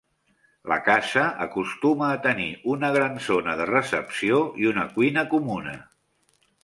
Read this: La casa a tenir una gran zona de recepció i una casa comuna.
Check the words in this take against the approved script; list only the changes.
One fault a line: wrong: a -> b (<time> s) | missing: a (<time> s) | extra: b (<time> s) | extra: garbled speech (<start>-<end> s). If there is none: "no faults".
extra: acostuma (1.4 s)
wrong: casa -> cuina (5.0 s)